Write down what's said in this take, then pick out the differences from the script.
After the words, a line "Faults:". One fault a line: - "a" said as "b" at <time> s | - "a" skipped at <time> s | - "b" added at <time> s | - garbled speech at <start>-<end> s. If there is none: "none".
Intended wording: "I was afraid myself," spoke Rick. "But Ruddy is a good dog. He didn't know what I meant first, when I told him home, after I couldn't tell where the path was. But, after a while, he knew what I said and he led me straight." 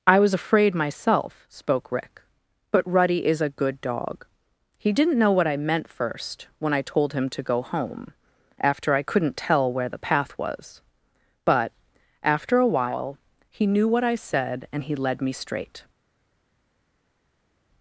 "I was afraid myself," spoke Rick. "But Ruddy is a good dog. He didn't know what I meant first, when I told him to go home, after I couldn't tell where the path was. But, after a while, he knew what I said and he led me straight."
Faults:
- "to go" added at 7.3 s